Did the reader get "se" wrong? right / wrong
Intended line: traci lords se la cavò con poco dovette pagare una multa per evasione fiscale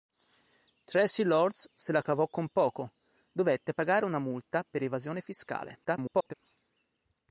right